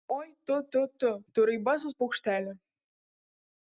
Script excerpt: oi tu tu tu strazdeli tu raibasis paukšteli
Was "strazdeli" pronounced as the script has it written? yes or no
no